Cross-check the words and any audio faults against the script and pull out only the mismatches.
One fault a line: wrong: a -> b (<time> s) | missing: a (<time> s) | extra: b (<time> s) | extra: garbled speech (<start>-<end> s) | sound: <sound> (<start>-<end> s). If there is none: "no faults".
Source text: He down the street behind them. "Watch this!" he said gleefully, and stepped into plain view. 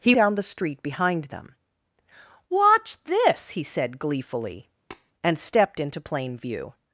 sound: tap (4.9-5.1 s)